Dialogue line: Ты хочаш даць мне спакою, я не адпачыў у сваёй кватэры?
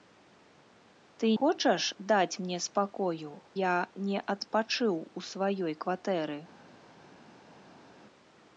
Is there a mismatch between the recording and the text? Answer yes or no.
no